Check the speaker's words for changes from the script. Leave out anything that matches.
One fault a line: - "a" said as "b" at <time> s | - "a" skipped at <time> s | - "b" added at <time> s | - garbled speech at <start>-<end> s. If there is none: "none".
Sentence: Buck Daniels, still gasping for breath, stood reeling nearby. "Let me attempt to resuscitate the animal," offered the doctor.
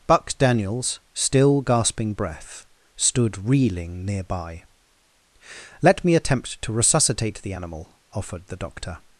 - "for" skipped at 2.1 s